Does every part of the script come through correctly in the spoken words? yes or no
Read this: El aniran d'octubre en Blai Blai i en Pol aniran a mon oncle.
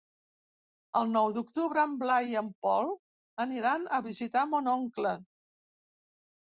no